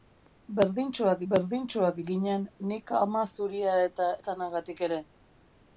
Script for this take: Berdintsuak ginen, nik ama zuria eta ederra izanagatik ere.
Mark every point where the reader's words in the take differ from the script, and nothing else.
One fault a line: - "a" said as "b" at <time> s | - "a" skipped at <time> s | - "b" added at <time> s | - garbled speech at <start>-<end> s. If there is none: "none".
- "berdintsuak" added at 1.3 s
- "ederra" skipped at 4.1 s